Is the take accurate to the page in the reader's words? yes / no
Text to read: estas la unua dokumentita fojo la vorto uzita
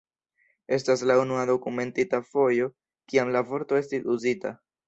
no